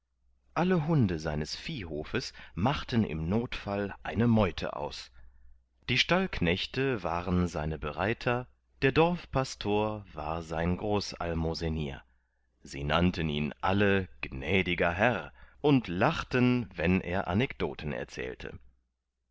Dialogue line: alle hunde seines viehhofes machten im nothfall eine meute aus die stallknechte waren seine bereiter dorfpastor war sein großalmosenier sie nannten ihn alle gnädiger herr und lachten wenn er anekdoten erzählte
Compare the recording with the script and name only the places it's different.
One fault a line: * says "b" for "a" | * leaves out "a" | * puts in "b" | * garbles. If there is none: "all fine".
* puts in "der"